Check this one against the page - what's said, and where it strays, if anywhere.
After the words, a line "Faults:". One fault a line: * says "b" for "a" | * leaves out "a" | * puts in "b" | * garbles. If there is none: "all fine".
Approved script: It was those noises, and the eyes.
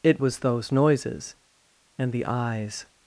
It was those noises, and the eyes.
Faults:
all fine